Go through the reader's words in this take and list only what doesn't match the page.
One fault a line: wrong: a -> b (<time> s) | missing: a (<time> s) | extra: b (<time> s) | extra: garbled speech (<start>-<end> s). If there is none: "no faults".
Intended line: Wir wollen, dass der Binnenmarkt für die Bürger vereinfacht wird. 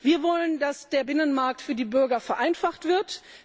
no faults